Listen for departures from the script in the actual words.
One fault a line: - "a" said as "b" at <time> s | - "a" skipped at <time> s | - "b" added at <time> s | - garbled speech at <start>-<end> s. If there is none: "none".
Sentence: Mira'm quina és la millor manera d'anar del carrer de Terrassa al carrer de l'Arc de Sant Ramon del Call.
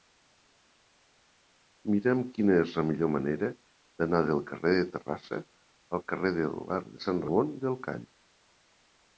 none